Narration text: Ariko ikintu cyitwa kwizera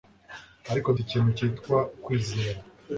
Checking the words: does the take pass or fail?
pass